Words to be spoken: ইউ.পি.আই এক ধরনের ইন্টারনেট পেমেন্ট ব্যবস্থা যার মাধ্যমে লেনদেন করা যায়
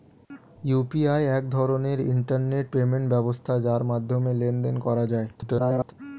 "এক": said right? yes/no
yes